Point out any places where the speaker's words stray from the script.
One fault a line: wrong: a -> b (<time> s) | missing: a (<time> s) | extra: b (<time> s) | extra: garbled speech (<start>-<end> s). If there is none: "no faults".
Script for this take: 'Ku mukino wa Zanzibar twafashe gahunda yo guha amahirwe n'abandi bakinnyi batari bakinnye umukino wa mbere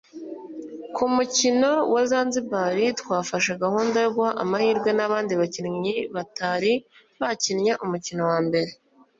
no faults